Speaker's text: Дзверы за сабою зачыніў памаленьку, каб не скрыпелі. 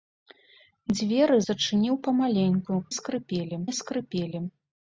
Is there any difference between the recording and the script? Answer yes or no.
yes